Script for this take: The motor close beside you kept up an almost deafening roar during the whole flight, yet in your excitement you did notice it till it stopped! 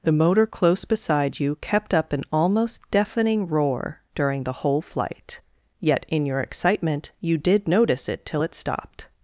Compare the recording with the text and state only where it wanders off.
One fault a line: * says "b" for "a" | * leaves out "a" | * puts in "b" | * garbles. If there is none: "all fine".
all fine